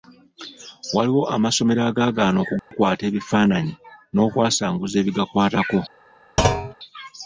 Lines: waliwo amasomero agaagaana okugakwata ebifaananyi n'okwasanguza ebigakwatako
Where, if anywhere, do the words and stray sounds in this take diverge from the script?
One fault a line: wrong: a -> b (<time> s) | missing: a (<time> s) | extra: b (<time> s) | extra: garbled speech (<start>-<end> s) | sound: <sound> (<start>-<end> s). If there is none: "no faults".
sound: dropout (2.6-2.7 s)
sound: thud (6.4-6.7 s)